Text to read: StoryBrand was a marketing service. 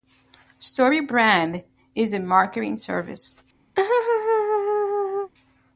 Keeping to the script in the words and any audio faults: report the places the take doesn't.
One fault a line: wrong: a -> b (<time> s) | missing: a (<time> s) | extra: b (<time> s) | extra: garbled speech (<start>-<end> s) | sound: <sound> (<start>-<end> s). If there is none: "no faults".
wrong: was -> is (1.9 s)
sound: laugh (3.8-5.3 s)